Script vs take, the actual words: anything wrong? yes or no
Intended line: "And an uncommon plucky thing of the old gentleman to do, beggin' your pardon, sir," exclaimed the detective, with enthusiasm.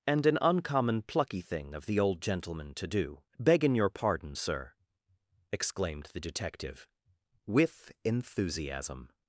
no